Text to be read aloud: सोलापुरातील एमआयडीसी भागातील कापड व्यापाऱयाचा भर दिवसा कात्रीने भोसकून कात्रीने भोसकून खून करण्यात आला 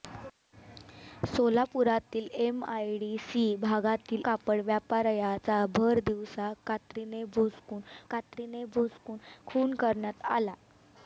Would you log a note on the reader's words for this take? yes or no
no